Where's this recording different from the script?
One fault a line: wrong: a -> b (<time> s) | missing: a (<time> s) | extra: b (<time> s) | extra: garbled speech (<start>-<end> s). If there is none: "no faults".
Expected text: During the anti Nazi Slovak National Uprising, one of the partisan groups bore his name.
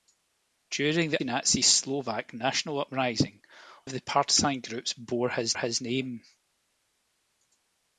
missing: anti (1.2 s)
missing: one (3.4 s)
extra: his (5.6 s)